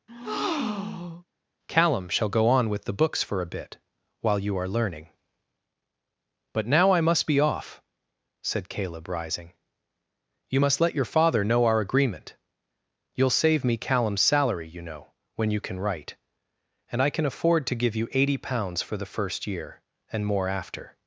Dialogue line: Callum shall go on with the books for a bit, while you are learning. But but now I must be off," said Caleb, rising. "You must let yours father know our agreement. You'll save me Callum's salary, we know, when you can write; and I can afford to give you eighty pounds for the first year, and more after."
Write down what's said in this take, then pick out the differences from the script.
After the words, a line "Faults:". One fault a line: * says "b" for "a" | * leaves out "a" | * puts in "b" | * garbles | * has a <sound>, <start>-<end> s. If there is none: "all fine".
Callum shall go on with the books for a bit, while you are learning. But now I must be off," said Caleb, rising. "You must let your father know our agreement. You'll save me Callum's salary, you know, when you can write; and I can afford to give you eighty pounds for the first year, and more after."
Faults:
* has a breath, 0.1-1.2 s
* leaves out "but"
* says "your" for "yours"
* says "you" for "we"